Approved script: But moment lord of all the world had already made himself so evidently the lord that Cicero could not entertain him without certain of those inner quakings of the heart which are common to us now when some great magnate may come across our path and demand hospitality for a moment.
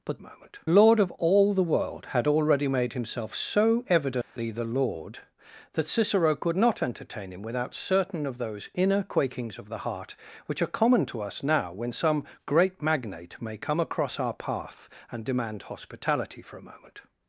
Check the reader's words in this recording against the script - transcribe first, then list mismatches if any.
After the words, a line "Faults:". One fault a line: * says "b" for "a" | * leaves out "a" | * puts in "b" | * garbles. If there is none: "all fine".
But moment lord of all the world had already made himself so evidently the lord that Cicero could not entertain him without certain of those inner quakings of the heart which are common to us now when some great magnate may come across our path and demand hospitality for a moment.
Faults:
all fine